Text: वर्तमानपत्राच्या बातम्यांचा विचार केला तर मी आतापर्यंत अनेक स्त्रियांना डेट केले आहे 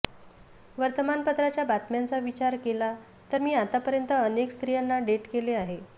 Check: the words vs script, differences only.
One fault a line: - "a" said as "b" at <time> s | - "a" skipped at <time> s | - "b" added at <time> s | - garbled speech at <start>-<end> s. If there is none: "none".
none